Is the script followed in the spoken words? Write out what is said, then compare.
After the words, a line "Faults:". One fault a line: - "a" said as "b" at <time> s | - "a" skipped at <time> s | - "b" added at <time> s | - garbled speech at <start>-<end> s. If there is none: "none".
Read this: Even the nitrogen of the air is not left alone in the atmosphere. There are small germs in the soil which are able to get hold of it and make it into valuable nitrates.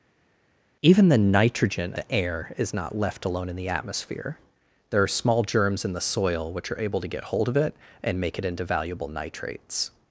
Even the nitrogen the air is not left alone in the atmosphere. There are small germs in the soil which are able to get hold of it and make it into valuable nitrates.
Faults:
- "of" skipped at 1.9 s